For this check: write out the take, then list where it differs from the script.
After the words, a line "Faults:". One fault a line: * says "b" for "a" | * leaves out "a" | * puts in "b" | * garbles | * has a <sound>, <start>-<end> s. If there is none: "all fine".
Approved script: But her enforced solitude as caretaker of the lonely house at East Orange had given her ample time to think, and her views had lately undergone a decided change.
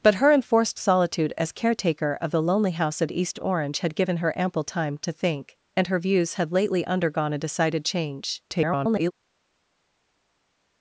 But her enforced solitude as caretaker of the lonely house at East Orange had given her ample time to think, and her views had lately undergone a decided change. [garbled]
Faults:
* garbles